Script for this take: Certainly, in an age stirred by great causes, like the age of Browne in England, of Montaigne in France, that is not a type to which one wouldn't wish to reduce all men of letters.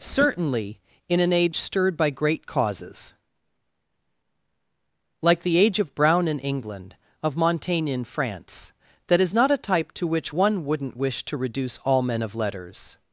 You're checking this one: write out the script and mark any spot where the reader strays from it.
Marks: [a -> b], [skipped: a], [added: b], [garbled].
Certainly, in an age stirred by great causes, like the age of Browne in England, of Montaigne in France, that is not a type to which one wouldn't wish to reduce all men of letters.